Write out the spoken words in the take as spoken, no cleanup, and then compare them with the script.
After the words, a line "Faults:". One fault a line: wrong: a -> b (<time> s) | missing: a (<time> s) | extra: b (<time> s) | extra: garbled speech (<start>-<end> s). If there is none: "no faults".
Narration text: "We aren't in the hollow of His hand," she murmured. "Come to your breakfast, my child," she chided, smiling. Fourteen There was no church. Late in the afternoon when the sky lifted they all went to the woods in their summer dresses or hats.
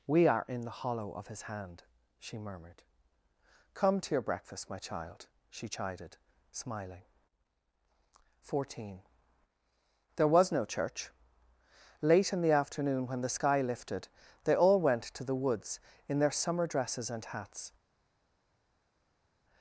"We are in the hollow of His hand," she murmured. "Come to your breakfast, my child," she chided, smiling. Fourteen There was no church. Late in the afternoon when the sky lifted they all went to the woods in their summer dresses and hats.
Faults:
wrong: aren't -> are (0.3 s)
wrong: or -> and (17.1 s)